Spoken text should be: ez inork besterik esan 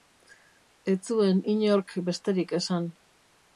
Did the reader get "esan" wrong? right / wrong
right